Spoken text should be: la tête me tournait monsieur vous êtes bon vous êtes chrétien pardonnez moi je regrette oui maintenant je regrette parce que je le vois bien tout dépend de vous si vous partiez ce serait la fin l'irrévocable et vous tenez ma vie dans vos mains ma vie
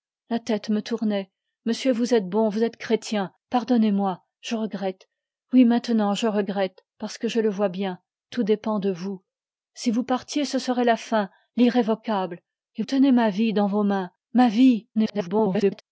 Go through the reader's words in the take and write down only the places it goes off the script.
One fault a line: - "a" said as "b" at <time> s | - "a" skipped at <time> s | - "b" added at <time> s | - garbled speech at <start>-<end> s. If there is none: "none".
- "vous" skipped at 12.8 s
- garbled speech at 14.9-15.8 s